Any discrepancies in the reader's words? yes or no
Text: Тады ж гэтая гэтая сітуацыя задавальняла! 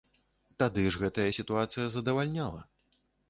yes